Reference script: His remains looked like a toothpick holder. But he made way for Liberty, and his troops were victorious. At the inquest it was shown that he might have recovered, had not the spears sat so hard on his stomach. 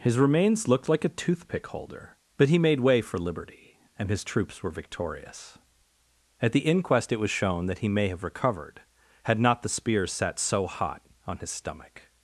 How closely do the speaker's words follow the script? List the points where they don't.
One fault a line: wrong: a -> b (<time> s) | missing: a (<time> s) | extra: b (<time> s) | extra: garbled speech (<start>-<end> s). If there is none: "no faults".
wrong: might -> may (7.9 s)
wrong: hard -> hot (10.7 s)